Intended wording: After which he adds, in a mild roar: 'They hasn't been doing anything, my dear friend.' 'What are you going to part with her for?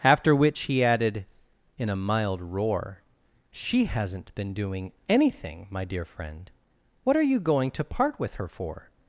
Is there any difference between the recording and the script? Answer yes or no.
yes